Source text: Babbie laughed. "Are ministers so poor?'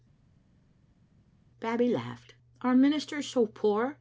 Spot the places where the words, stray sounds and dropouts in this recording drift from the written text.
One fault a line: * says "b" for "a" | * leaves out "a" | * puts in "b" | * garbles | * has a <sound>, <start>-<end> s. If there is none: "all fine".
all fine